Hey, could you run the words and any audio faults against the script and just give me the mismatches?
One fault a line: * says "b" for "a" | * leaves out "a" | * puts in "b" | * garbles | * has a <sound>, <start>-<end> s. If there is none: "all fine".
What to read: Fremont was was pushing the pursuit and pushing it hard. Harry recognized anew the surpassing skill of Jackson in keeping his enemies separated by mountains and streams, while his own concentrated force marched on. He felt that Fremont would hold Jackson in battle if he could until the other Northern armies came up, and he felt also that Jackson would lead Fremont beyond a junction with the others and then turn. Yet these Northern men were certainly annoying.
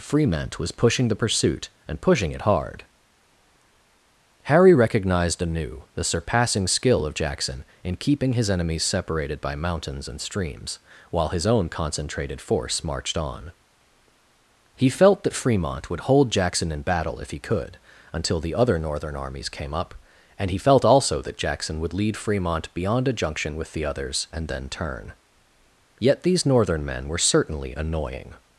* leaves out "was"